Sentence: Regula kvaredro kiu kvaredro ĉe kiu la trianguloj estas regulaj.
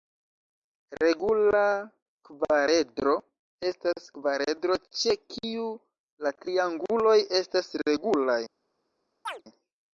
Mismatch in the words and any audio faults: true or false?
true